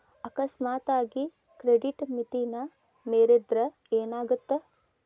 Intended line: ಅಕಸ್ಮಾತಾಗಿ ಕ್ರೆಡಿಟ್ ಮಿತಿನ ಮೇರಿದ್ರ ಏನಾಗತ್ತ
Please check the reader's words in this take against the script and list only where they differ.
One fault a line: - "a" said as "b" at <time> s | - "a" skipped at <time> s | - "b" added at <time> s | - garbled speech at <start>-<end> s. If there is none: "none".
none